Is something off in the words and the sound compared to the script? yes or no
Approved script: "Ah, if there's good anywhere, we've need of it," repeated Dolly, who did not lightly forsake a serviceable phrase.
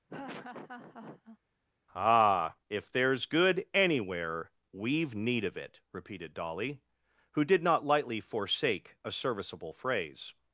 yes